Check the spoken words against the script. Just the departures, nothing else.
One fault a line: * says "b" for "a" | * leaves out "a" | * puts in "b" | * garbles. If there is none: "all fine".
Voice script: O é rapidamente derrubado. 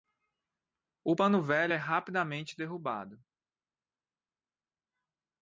* puts in "pano velho"